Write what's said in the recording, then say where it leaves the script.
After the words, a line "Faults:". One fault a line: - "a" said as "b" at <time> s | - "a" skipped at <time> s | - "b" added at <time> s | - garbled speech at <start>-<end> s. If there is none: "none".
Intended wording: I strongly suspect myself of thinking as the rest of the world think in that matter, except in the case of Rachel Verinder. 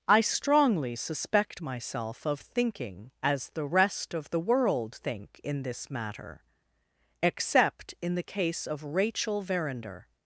I strongly suspect myself of thinking as the rest of the world think in this matter, except in the case of Rachel Verinder.
Faults:
- "that" said as "this" at 5.6 s